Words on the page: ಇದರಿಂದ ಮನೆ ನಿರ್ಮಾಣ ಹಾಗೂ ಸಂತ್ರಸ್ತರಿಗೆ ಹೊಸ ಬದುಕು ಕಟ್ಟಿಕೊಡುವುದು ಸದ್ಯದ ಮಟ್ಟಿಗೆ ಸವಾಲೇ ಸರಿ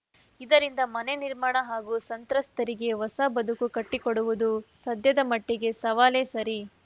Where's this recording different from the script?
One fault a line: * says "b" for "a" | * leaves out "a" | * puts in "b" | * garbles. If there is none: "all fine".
all fine